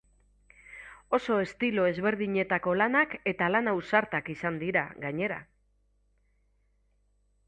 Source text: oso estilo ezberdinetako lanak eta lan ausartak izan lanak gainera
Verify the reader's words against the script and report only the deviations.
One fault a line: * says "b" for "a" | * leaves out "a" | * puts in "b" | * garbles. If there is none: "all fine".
* says "dira" for "lanak"